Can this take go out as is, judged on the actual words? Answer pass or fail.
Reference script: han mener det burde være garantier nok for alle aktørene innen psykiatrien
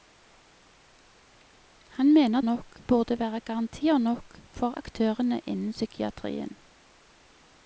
fail